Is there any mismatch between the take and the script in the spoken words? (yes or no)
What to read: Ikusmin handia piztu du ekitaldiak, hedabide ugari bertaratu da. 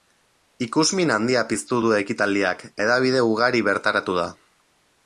no